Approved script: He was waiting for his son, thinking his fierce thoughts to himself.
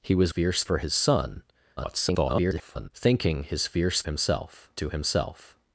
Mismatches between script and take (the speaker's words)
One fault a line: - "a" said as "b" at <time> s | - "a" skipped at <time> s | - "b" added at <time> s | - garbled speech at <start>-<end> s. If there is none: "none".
- "waiting" said as "fierce" at 0.3 s
- garbled speech at 1.8-2.9 s
- "thoughts" said as "himself" at 4.0 s